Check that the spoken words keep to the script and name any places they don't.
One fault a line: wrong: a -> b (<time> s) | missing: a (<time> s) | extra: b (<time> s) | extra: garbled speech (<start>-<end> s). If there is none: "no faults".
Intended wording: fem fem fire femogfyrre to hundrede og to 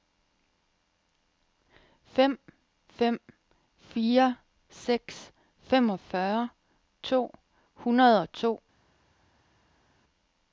extra: seks (4.7 s)